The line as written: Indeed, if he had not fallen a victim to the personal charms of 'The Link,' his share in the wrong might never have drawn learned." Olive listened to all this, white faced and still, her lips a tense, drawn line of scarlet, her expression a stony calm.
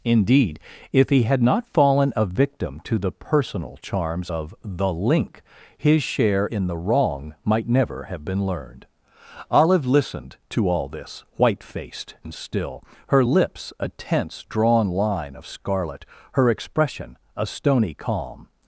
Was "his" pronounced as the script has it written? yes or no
yes